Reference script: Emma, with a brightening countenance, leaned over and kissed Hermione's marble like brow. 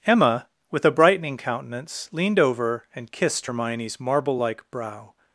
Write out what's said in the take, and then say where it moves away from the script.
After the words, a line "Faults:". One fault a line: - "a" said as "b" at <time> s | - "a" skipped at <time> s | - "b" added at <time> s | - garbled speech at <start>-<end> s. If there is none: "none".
Emma, with a brightening countenance, leaned over and kissed Hermione's marble like brow.
Faults:
none